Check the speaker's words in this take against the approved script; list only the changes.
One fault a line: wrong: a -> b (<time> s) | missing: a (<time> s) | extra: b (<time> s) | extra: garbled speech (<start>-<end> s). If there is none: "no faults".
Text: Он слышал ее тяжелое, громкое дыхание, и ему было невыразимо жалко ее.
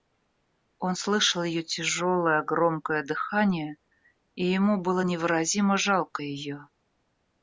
no faults